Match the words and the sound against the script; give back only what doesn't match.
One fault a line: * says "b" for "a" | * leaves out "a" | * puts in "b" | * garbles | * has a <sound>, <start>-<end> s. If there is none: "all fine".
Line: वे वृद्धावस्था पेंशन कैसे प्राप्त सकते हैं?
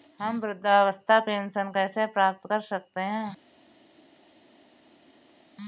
* says "हम" for "वे"
* puts in "कर"